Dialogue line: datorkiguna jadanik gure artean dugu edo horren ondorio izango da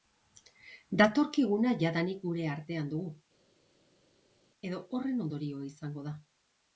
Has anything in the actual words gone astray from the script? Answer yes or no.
no